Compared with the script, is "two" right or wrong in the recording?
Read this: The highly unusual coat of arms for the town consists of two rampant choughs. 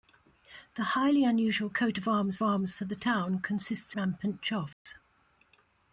wrong